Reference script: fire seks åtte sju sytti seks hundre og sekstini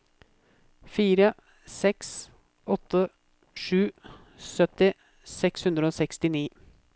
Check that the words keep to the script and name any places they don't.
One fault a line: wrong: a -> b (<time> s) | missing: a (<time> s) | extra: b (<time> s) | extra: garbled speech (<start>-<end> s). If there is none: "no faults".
no faults